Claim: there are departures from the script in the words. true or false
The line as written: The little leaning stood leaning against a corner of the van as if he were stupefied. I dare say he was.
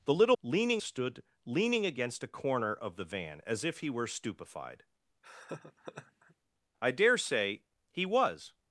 false